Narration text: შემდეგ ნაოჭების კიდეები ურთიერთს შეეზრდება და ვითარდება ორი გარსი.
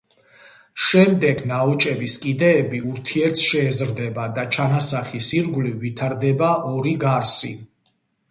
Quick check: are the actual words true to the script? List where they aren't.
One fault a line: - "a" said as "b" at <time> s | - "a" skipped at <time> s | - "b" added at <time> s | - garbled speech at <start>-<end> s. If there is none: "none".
- "ჩანასახის ირგვლივ" added at 4.6 s